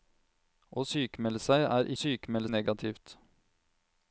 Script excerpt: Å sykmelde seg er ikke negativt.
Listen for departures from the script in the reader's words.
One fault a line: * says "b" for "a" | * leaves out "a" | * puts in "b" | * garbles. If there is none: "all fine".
* says "sykmelde" for "ikke"